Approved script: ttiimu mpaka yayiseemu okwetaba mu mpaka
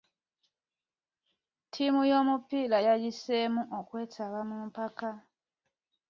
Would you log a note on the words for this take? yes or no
yes